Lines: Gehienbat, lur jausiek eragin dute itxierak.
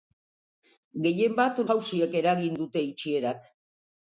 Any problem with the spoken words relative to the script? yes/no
yes